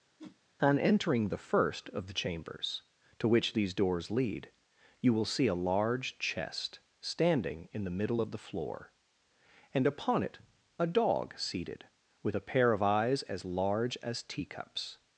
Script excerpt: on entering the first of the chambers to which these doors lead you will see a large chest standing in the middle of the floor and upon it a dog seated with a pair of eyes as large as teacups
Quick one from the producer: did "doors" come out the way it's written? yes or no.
yes